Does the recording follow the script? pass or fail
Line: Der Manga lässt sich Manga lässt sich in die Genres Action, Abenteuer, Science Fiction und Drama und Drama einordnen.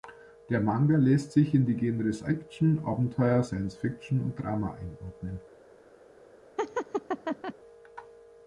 fail